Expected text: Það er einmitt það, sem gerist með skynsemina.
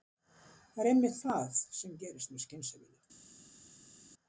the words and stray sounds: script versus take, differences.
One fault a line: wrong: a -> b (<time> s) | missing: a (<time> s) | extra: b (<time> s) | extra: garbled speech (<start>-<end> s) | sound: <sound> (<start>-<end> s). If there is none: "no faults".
no faults